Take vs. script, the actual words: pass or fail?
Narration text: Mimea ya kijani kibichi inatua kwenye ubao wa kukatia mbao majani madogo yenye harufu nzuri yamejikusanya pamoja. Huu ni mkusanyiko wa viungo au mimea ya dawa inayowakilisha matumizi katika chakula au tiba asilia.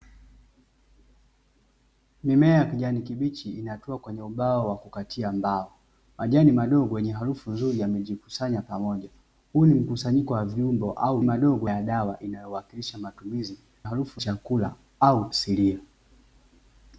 fail